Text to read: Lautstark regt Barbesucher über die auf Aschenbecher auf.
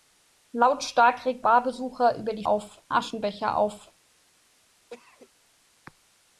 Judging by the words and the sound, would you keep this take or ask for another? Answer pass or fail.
fail